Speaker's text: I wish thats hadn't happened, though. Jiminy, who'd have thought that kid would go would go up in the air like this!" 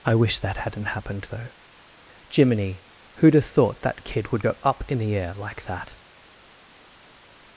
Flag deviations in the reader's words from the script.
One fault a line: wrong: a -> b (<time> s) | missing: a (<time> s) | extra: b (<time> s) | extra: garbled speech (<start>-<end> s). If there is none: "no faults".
wrong: thats -> that (0.4 s)
missing: would go (4.6 s)
wrong: this -> that (5.6 s)